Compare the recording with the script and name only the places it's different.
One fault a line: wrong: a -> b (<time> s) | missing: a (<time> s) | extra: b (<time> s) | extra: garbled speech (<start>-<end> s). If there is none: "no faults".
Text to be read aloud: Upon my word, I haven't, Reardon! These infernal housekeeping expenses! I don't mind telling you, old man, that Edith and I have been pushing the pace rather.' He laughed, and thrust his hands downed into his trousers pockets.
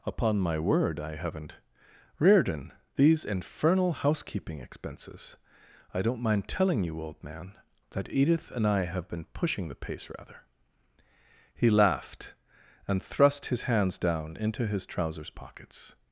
wrong: downed -> down (14.0 s)